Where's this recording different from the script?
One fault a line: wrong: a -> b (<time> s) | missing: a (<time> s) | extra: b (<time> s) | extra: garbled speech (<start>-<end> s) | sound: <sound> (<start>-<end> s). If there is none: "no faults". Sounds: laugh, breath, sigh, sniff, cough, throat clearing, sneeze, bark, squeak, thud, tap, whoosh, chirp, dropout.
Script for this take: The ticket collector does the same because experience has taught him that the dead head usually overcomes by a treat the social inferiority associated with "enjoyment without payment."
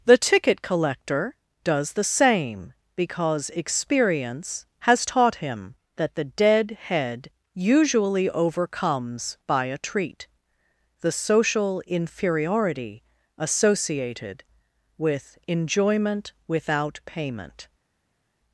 no faults